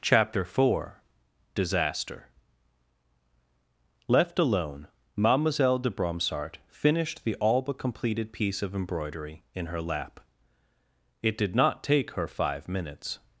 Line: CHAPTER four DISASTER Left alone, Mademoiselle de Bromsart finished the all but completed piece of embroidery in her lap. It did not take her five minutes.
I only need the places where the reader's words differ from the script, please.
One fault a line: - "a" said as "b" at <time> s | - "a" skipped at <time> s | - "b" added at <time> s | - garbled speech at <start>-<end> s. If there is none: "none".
none